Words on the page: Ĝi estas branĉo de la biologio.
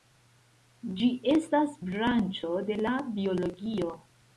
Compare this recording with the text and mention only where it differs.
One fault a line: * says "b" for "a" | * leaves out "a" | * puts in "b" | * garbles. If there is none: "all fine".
all fine